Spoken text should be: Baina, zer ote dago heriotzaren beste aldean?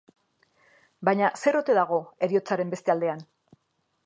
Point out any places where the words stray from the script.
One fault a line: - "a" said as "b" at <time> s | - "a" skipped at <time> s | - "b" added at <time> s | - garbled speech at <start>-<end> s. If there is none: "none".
none